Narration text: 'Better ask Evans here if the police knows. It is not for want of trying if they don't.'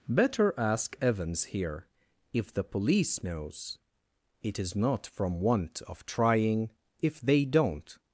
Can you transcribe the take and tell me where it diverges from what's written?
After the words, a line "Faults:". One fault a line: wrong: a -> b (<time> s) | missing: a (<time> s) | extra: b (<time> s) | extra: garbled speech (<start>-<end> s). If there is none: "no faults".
'Better ask Evans here if the police knows. It is not from want of trying if they don't.'
Faults:
wrong: for -> from (5.1 s)